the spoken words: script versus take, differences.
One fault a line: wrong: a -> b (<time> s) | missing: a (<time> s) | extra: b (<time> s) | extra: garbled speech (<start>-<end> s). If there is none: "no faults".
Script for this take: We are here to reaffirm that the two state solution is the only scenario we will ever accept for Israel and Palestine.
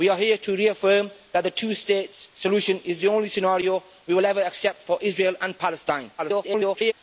extra: garbled speech (6.2-6.9 s)